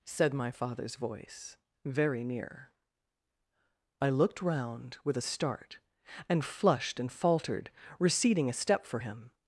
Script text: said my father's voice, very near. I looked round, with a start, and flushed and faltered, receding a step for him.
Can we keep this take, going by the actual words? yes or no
yes